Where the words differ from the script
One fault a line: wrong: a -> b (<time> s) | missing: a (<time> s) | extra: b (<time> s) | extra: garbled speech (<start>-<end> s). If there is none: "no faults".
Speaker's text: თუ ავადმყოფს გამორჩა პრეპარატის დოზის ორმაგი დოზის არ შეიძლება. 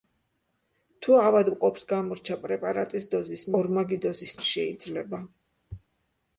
no faults